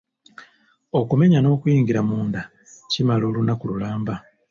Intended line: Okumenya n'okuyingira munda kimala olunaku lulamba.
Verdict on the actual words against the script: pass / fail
pass